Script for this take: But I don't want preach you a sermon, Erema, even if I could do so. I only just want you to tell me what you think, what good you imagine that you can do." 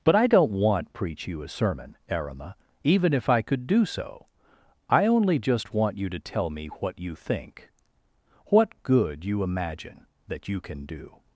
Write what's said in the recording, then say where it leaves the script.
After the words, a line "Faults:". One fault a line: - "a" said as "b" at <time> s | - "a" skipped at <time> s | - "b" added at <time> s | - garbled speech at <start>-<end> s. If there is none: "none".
But I don't want preach you a sermon, Erema, even if I could do so. I only just want you to tell me what you think, what good you imagine that you can do."
Faults:
none